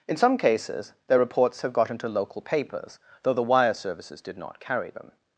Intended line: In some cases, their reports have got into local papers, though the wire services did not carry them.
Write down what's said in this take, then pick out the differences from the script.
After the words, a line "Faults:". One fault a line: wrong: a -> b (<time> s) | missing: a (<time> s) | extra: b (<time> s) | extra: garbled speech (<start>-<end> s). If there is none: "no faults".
In some cases, their reports have got into local papers, though the wire services did not carry them.
Faults:
no faults